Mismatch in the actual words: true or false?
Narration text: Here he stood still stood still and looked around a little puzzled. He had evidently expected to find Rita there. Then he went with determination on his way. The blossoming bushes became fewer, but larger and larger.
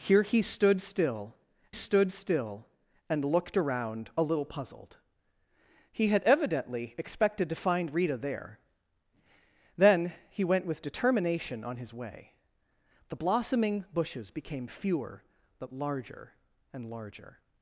false